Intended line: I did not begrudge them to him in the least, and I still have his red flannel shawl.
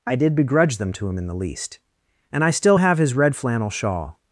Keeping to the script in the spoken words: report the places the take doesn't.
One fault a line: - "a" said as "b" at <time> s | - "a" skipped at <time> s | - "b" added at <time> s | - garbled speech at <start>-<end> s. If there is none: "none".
- "not" skipped at 0.3 s